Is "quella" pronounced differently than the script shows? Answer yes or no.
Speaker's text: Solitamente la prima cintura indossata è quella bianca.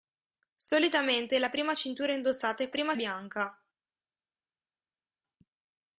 yes